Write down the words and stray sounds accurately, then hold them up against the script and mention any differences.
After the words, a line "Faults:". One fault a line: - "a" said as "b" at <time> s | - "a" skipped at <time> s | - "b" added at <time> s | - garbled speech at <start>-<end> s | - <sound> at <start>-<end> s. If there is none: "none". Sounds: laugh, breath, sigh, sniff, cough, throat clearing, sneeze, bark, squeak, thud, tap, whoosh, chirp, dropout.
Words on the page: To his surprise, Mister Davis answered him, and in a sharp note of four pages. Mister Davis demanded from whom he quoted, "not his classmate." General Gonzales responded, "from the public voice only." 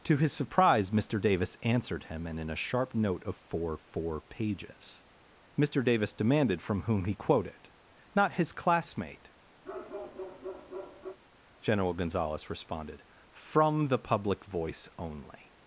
To his surprise, Mister Davis answered him, and in a sharp note of four four pages. Mister Davis demanded from whom he quoted, "not his classmate." General Gonzales responded, "from the public voice only."
Faults:
- "four" added at 3.8 s
- bark at 9.6-11.2 s